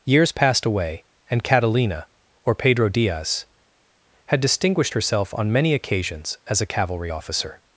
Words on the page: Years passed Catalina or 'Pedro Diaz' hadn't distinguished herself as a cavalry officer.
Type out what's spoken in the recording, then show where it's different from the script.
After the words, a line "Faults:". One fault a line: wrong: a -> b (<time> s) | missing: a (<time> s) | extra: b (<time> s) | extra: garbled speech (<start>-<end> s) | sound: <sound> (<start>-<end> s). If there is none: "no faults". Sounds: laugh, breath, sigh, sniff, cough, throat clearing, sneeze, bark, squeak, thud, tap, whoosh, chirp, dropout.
Years passed away and Catalina or 'Pedro Diaz' had distinguished herself on many occasions as a cavalry officer.
Faults:
extra: away and (0.7 s)
wrong: hadn't -> had (4.3 s)
extra: on many occasions (5.3 s)